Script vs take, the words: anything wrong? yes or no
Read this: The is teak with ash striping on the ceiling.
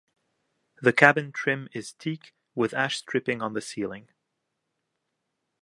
yes